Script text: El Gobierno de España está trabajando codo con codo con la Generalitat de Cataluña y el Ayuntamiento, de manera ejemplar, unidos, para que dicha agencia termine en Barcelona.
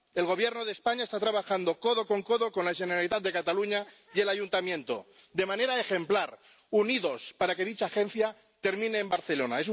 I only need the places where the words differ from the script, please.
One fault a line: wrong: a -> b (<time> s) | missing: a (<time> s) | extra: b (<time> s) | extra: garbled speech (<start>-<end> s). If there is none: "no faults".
no faults